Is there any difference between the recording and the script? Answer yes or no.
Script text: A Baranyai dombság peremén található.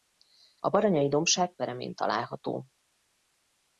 no